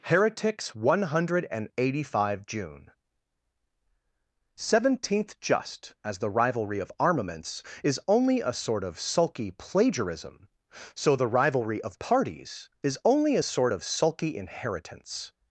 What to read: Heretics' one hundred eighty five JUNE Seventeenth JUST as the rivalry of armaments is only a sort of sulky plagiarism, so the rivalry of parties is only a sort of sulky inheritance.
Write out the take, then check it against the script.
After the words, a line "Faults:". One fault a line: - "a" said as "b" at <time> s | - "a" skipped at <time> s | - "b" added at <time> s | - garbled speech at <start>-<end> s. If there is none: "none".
Heretics' one hundred eighty five JUNE Seventeenth JUST as the rivalry of armaments is only a sort of sulky plagiarism, so the rivalry of parties is only a sort of sulky inheritance.
Faults:
none